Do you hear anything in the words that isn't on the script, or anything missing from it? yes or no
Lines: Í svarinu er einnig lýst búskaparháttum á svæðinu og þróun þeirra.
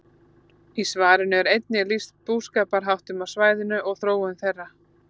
no